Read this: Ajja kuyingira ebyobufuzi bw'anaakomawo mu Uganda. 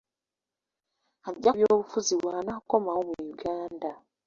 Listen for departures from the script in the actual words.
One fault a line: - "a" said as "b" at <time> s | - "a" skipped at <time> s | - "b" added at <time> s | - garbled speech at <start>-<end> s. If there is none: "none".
- "kuyingira" skipped at 1.5 s